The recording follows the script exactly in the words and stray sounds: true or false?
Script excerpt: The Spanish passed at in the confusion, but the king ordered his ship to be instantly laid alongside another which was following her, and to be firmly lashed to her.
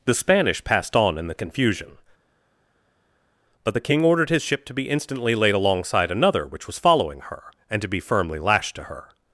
false